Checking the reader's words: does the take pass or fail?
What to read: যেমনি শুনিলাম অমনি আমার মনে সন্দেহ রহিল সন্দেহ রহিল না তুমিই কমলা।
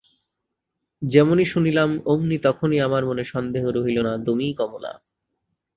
fail